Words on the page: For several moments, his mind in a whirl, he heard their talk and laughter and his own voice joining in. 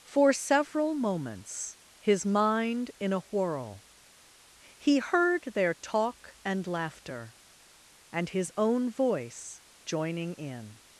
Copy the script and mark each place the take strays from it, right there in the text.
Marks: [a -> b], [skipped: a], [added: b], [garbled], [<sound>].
For several moments, his mind in a whirl, he heard their talk and laughter and his own voice joining in.